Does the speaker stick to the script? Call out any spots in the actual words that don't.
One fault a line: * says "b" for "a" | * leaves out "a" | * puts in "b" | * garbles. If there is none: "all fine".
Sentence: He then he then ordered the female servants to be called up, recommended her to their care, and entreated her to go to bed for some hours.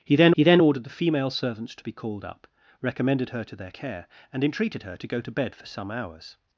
all fine